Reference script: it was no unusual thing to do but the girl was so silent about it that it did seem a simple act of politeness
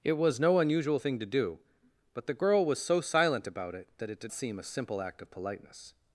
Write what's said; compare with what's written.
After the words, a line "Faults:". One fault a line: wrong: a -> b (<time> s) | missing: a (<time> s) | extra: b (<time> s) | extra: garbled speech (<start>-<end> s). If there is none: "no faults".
it was no unusual thing to do but the girl was so silent about it that it did seem a simple act of politeness
Faults:
no faults